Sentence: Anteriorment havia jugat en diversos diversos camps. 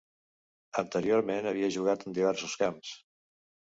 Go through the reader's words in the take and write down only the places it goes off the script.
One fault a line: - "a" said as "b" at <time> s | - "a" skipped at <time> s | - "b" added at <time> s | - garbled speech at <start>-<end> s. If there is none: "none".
- "diversos" skipped at 2.6 s